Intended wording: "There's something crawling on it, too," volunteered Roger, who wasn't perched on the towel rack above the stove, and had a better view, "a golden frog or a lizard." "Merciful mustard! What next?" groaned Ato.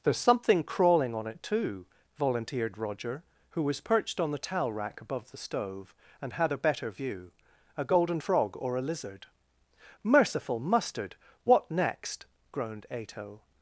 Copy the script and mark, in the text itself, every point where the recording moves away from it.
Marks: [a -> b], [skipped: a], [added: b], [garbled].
"There's something crawling on it, too," volunteered Roger, who [wasn't -> was] perched on the towel rack above the stove, and had a better view, "a golden frog or a lizard." "Merciful mustard! What next?" groaned Ato.